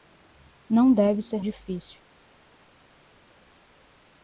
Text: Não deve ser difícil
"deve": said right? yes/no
yes